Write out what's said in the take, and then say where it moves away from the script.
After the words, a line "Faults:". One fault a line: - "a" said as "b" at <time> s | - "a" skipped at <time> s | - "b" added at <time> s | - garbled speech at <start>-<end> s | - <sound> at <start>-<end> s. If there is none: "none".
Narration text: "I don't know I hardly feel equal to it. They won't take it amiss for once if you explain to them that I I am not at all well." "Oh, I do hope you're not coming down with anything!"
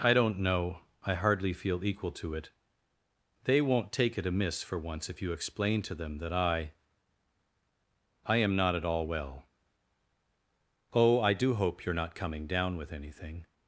"I don't know I hardly feel equal to it. They won't take it amiss for once if you explain to them that I I am not at all well." "Oh, I do hope you're not coming down with anything!"
Faults:
none